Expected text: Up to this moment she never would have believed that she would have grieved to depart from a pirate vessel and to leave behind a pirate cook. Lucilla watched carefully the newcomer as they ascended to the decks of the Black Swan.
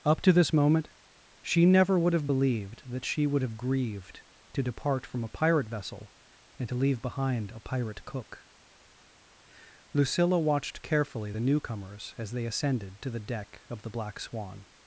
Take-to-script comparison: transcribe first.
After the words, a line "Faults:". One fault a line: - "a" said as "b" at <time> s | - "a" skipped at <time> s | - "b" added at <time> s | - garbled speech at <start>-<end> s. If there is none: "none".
Up to this moment she never would have believed that she would have grieved to depart from a pirate vessel and to leave behind a pirate cook. Lucilla watched carefully the newcomers as they ascended to the deck of the Black Swan.
Faults:
- "newcomer" said as "newcomers" at 11.4 s
- "decks" said as "deck" at 13.2 s